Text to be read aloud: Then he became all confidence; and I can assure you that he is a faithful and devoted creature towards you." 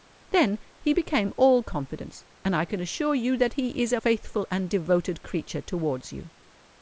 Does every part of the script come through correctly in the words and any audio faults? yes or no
yes